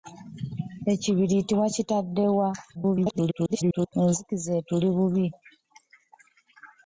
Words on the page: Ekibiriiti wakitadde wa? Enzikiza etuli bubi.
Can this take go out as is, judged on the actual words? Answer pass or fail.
fail